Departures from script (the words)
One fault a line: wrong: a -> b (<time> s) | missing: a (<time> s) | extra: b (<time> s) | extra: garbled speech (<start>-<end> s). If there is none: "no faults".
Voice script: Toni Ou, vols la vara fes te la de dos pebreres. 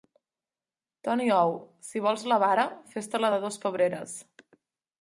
extra: si (1.9 s)